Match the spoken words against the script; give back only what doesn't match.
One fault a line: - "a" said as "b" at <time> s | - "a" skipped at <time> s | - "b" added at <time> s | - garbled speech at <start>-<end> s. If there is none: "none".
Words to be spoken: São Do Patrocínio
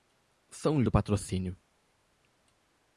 none